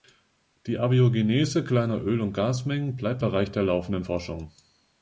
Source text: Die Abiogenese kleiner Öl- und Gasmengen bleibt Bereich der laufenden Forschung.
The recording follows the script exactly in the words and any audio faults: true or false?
true